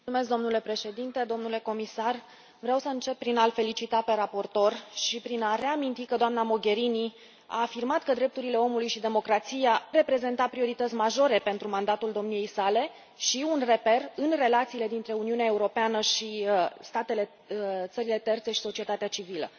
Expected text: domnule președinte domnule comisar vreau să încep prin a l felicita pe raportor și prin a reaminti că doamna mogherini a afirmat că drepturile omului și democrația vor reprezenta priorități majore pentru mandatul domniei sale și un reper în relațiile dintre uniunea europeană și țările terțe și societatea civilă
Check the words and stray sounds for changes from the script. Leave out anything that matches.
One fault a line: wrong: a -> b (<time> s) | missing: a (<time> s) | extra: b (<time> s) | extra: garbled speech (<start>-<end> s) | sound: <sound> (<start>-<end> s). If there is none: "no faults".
missing: vor (9.8 s)